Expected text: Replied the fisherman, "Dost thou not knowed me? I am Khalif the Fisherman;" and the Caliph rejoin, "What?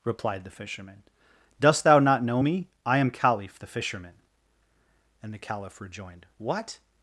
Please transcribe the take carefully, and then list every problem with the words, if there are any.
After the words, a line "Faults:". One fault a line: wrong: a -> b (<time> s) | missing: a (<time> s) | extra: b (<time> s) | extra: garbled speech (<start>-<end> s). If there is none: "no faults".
Replied the fisherman, "Dost thou not know me? I am Khalif the Fisherman;" and the Caliph rejoined, "What?
Faults:
wrong: knowed -> know (2.2 s)
wrong: rejoin -> rejoined (5.8 s)